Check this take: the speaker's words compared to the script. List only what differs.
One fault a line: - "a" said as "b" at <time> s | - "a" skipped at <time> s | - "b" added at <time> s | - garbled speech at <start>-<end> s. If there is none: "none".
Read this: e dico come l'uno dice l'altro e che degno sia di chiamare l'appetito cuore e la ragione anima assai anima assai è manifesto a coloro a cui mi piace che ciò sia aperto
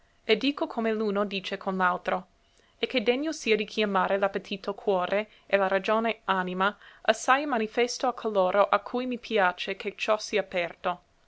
- "con" added at 1.6 s
- "anima assai" skipped at 7.4 s